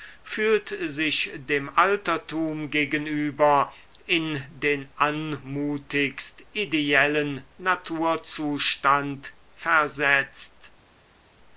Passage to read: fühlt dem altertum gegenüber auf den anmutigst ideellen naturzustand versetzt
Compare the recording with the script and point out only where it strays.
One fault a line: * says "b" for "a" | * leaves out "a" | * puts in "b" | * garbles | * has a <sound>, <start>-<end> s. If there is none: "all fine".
* puts in "sich"
* says "in" for "auf"